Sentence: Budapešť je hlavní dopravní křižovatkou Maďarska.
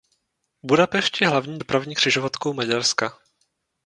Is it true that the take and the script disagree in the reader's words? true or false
false